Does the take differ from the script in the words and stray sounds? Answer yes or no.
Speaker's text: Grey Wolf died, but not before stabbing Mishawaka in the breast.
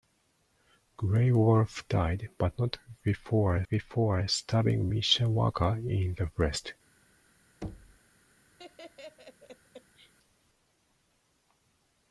yes